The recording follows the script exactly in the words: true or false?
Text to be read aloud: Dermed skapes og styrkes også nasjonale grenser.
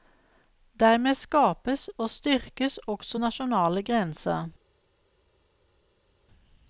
true